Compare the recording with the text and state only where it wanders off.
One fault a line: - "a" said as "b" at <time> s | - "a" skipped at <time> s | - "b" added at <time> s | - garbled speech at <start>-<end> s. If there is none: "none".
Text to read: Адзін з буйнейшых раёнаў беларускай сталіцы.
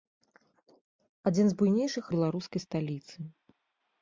- "раёнаў" skipped at 2.0 s